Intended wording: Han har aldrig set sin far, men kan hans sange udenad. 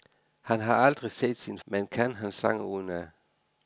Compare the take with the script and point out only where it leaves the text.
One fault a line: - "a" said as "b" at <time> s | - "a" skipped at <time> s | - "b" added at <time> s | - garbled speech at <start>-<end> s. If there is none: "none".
- "far" skipped at 1.6 s